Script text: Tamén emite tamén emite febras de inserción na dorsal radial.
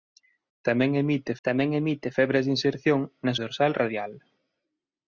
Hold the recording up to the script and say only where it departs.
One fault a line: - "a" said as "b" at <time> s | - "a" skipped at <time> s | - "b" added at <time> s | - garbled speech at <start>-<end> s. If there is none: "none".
none